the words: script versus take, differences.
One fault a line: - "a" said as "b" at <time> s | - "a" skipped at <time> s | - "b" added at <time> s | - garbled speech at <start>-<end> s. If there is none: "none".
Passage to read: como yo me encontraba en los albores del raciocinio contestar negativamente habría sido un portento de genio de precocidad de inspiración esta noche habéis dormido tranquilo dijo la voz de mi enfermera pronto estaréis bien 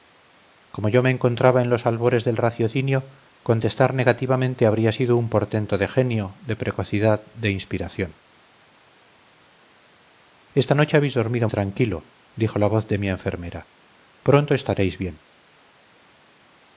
none